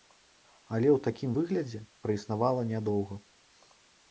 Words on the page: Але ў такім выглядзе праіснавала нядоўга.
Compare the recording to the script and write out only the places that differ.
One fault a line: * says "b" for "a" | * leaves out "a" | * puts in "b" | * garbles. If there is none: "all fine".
all fine